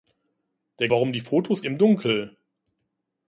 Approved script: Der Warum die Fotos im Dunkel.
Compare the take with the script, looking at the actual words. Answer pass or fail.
pass